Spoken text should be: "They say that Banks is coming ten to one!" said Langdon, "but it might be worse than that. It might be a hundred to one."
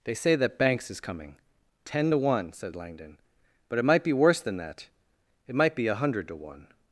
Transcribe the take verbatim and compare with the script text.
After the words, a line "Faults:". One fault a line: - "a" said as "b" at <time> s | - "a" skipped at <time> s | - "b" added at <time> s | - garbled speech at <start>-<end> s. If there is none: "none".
"They say that Banks is coming ten to one!" said Langdon, "but it might be worse than that. It might be a hundred to one."
Faults:
none